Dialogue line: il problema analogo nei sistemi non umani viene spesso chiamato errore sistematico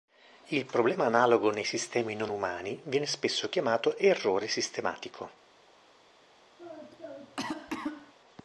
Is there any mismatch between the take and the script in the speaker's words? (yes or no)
no